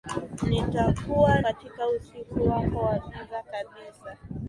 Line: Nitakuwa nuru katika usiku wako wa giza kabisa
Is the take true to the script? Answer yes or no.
no